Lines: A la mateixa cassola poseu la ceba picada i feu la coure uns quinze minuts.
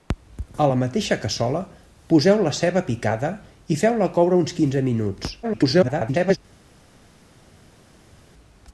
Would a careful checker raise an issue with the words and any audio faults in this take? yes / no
yes